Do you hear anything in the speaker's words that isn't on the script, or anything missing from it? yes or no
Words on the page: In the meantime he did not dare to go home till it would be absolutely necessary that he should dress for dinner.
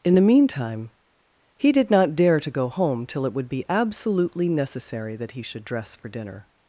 no